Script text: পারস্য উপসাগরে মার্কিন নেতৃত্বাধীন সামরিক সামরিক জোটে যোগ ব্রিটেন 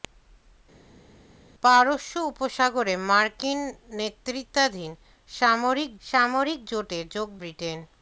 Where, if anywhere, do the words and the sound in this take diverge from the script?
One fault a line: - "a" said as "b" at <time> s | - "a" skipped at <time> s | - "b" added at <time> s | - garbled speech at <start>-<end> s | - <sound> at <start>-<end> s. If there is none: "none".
none